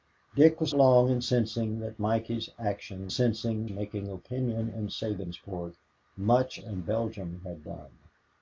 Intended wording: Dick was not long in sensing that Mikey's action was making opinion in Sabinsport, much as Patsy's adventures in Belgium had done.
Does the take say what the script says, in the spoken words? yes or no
no